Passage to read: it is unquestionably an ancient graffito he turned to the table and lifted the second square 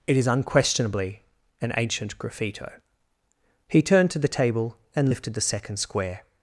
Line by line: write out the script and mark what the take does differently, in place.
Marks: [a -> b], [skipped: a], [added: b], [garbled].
it is unquestionably an ancient graffito he turned to the table and lifted the second square